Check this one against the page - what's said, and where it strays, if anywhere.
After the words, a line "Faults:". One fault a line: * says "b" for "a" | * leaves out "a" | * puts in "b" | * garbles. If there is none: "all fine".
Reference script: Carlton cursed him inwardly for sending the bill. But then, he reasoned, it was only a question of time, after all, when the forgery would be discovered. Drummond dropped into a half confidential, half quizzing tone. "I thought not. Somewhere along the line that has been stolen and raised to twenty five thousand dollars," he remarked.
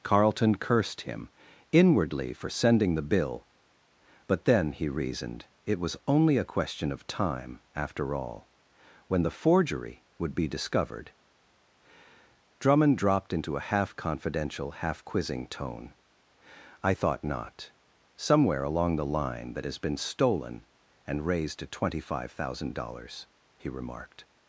Carlton cursed him inwardly for sending the bill. But then, he reasoned, it was only a question of time, after all, when the forgery would be discovered. Drummond dropped into a half confidential, half quizzing tone. "I thought not. Somewhere along the line that has been stolen and raised to twenty five thousand dollars," he remarked.
Faults:
all fine